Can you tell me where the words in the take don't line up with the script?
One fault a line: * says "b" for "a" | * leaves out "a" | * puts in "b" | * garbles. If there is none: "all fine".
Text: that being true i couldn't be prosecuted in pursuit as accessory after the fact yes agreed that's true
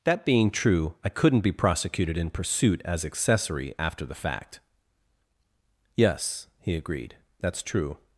* puts in "he"